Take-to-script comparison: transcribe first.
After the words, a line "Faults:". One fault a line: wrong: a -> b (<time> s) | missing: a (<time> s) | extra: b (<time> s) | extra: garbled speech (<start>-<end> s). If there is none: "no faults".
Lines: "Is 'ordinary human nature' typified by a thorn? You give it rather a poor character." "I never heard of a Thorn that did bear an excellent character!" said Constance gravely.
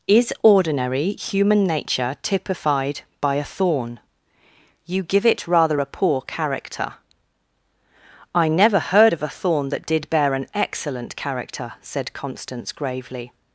"Is 'ordinary human nature' typified by a thorn? You give it rather a poor character." "I never heard of a Thorn that did bear an excellent character!" said Constance gravely.
Faults:
no faults